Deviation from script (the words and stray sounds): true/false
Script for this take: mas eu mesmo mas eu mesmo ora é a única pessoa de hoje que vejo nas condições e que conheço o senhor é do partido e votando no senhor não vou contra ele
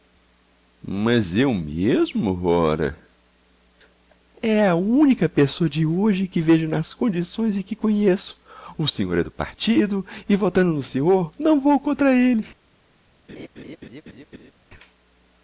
true